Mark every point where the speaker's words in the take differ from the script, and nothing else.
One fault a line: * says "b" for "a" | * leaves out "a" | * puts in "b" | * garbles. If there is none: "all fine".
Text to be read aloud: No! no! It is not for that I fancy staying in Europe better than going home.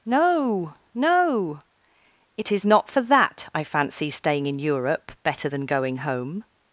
all fine